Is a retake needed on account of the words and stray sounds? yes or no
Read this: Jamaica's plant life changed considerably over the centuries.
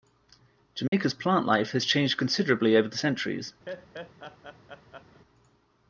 yes